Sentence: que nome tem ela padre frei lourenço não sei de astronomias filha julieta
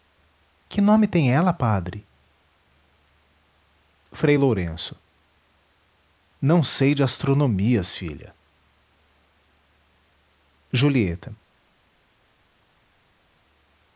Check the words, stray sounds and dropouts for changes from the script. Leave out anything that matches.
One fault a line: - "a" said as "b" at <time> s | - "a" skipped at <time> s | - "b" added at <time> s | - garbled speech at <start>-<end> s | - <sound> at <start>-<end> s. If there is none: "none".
none